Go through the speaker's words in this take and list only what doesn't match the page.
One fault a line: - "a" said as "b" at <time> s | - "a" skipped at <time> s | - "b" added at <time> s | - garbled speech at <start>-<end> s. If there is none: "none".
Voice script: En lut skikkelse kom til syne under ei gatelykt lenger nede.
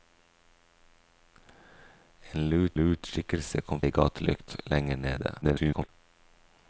- "lut" added at 2.8 s
- "til syne under" skipped at 3.8 s
- garbled speech at 5.4-5.9 s